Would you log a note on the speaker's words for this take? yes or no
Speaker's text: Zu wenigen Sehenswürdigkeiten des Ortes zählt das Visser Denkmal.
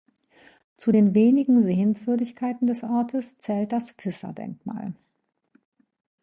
yes